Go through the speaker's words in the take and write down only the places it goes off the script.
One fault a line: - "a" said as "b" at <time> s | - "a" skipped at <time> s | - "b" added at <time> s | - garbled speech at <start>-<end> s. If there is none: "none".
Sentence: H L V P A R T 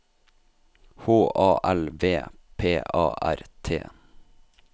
- "A" added at 1.4 s